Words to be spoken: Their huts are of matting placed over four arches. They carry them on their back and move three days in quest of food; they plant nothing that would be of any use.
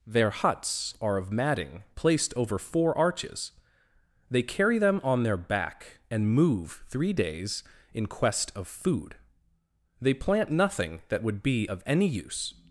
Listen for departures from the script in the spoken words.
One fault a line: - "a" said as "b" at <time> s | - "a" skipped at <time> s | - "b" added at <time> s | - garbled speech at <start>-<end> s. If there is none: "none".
none